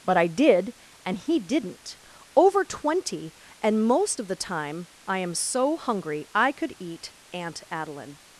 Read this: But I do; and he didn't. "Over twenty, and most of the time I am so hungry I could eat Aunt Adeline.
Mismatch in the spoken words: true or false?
true